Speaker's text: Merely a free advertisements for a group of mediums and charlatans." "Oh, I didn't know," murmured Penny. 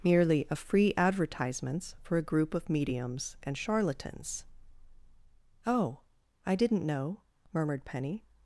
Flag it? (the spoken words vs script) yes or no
no